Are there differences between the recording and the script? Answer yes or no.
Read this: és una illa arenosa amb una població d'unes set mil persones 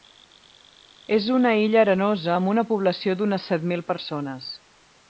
no